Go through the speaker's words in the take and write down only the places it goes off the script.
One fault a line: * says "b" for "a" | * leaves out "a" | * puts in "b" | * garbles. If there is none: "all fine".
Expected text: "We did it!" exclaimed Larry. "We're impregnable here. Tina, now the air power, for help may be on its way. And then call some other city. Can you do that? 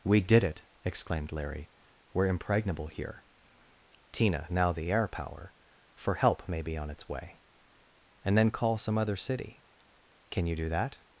all fine